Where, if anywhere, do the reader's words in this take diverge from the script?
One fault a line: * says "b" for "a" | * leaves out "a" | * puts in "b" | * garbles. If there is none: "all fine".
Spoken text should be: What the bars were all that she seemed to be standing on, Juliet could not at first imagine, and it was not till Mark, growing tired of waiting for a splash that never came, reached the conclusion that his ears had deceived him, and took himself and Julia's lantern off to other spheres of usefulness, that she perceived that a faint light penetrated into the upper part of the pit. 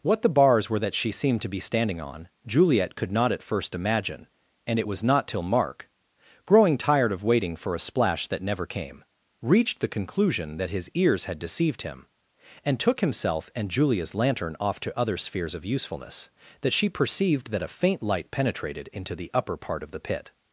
* leaves out "all"